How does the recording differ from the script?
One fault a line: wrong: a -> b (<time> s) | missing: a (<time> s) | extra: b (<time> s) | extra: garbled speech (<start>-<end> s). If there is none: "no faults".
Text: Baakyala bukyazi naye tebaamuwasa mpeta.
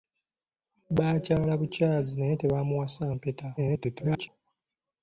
extra: garbled speech (3.6-4.3 s)